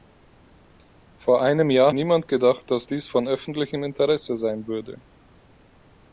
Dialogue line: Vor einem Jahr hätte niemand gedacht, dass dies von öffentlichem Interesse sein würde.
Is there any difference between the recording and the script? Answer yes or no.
yes